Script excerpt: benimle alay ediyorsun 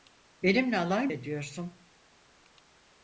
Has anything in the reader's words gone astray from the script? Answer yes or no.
no